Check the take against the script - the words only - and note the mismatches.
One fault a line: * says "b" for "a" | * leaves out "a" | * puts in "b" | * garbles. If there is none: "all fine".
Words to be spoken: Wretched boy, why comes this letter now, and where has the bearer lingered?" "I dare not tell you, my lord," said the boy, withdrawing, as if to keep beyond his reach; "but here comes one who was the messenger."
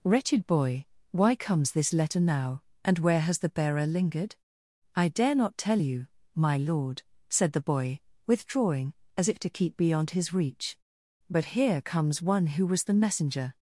all fine